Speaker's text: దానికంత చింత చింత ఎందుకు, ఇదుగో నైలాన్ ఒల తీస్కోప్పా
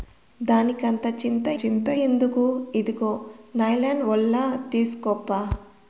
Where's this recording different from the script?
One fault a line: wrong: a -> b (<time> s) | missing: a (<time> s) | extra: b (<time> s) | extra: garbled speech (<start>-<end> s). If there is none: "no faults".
no faults